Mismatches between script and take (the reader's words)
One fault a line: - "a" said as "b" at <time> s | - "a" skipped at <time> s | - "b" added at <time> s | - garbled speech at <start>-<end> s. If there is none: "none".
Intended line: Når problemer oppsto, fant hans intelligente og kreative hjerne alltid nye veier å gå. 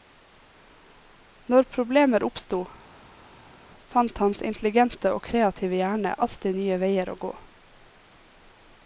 none